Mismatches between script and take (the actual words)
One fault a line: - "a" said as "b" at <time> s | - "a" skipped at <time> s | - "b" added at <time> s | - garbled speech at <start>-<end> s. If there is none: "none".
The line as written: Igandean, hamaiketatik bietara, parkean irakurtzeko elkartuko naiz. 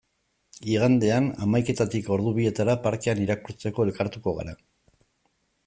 - "ordu" added at 2.2 s
- "naiz" said as "gara" at 4.4 s